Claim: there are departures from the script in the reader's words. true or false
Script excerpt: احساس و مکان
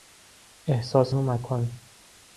false